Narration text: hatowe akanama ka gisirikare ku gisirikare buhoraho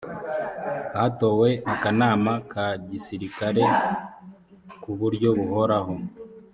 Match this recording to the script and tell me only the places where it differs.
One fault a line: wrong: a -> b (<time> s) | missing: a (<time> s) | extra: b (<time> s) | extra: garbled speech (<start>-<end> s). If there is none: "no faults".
wrong: gisirikare -> buryo (5.0 s)